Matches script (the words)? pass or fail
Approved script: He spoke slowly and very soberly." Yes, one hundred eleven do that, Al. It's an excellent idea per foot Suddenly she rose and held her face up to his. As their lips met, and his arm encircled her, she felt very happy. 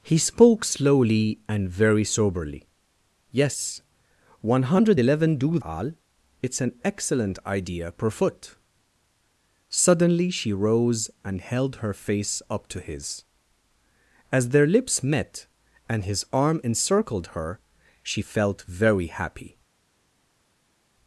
fail